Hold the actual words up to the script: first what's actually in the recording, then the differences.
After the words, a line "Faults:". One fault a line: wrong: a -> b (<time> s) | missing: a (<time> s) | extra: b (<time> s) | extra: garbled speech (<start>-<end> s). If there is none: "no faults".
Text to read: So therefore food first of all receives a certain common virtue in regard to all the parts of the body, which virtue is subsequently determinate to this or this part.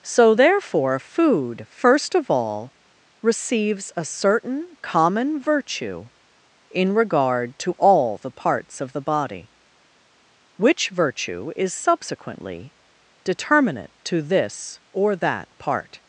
So therefore food first of all receives a certain common virtue in regard to all the parts of the body, which virtue is subsequently determinate to this or that part.
Faults:
wrong: this -> that (15.2 s)